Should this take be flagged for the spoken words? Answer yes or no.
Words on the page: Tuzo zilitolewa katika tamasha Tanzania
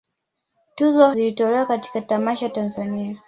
no